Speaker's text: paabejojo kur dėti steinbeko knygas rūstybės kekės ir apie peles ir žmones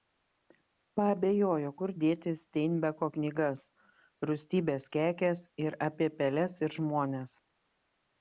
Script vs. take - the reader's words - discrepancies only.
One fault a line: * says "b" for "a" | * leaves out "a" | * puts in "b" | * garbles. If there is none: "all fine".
all fine